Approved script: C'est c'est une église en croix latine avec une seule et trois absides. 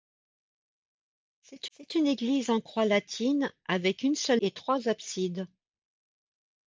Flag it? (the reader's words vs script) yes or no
no